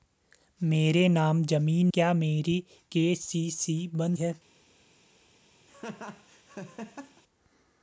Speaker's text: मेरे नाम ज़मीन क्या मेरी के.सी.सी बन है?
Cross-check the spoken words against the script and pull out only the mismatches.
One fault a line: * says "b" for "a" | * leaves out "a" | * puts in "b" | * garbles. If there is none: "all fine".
all fine